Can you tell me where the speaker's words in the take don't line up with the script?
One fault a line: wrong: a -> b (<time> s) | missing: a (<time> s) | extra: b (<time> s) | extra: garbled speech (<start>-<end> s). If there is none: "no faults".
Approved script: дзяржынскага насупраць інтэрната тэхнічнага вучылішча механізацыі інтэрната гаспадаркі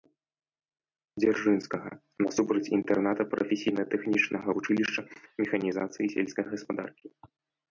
extra: прафесійна (3.3 s)
wrong: інтэрната -> сельскай (6.2 s)